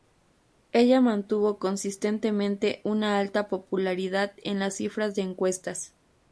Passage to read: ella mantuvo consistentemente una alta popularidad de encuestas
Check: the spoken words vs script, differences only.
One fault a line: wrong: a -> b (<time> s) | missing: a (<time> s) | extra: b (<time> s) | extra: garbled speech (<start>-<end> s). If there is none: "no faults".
extra: en las cifras (4.4 s)